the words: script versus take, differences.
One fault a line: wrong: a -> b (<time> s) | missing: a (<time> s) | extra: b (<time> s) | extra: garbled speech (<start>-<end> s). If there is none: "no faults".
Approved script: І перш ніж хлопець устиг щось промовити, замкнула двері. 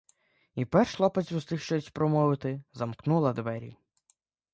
missing: ніж (0.9 s)